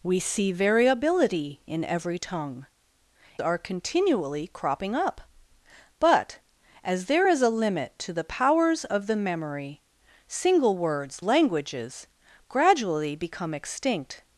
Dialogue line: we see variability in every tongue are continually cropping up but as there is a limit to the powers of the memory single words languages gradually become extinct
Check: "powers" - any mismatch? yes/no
no